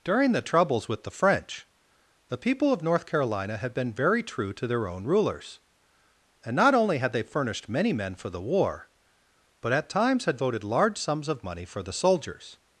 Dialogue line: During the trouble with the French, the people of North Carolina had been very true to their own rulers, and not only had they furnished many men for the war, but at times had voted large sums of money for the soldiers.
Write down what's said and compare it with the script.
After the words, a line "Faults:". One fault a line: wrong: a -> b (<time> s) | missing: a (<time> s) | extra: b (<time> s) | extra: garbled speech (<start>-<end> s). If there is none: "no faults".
During the troubles with the French, the people of North Carolina had been very true to their own rulers, and not only had they furnished many men for the war, but at times had voted large sums of money for the soldiers.
Faults:
wrong: trouble -> troubles (0.4 s)